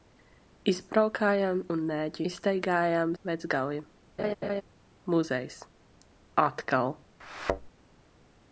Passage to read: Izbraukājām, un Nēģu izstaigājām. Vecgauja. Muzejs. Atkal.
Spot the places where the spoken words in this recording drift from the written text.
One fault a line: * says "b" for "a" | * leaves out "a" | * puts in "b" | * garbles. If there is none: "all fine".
all fine